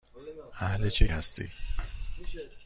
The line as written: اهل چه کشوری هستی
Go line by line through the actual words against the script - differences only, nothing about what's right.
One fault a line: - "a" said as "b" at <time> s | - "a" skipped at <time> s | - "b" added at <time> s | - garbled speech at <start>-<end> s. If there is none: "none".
- "کشوری" skipped at 1.1 s